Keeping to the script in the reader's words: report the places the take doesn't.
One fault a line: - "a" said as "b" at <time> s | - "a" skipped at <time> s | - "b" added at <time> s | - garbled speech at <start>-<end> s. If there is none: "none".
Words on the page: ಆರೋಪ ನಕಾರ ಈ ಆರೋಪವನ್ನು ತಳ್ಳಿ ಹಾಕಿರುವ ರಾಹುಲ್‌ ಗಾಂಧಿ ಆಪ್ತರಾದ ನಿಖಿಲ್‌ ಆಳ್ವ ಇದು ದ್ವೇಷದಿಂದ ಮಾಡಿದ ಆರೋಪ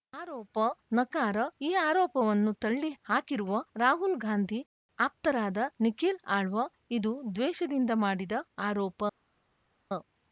none